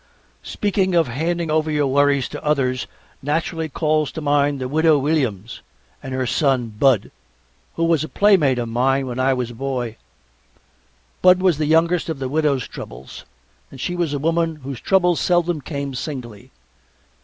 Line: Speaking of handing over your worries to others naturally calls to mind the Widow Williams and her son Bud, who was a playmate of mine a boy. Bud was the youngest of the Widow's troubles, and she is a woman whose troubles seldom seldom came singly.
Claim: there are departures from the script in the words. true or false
true